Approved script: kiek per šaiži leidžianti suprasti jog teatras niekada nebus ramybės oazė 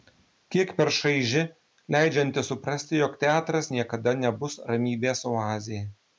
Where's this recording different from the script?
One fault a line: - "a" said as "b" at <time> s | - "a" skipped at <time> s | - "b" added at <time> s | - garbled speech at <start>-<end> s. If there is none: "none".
none